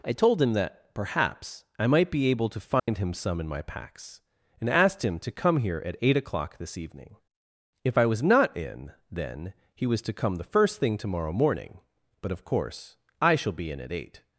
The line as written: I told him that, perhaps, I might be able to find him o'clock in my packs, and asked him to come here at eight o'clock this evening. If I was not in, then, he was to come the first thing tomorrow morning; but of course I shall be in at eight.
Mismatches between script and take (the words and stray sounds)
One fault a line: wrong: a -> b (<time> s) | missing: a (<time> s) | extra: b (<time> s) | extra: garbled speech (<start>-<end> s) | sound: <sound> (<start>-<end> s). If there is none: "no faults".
sound: dropout (2.8-2.9 s)
wrong: o'clock -> some (3.1 s)